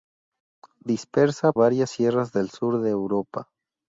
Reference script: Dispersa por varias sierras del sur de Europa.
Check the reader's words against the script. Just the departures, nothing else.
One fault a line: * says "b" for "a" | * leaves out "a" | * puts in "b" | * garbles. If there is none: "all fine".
* leaves out "por"